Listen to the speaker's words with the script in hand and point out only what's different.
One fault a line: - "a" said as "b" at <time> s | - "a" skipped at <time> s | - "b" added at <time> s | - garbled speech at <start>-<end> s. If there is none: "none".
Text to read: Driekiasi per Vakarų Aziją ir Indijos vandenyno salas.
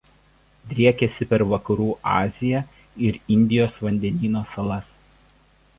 none